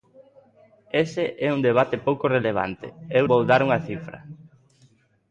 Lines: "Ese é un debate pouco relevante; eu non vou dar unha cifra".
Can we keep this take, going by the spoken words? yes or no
no